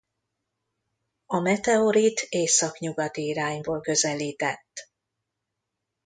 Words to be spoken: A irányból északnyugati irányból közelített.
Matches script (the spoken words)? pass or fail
fail